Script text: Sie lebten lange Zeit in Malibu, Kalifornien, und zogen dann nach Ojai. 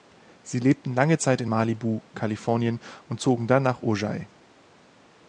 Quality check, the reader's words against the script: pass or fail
pass